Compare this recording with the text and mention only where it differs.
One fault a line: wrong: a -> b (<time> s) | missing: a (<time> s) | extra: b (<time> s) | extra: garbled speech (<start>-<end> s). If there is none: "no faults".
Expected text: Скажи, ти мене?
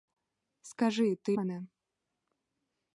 no faults